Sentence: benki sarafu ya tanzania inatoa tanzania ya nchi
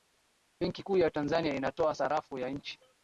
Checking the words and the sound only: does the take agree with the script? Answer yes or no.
no